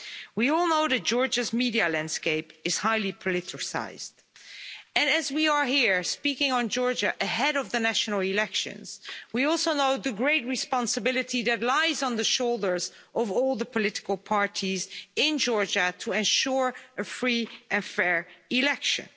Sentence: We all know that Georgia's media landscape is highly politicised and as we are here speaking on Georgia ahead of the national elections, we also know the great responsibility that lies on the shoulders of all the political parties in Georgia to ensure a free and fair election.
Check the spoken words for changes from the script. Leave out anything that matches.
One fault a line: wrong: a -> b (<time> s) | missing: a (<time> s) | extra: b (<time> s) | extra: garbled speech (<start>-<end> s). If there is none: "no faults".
no faults